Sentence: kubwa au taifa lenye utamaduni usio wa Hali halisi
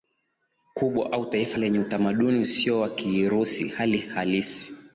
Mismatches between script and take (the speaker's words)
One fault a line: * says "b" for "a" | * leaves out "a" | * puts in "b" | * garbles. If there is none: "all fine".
* puts in "Kirusi"